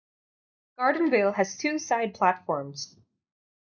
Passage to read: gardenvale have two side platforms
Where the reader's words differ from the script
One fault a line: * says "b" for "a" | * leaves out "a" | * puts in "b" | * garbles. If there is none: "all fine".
* says "has" for "have"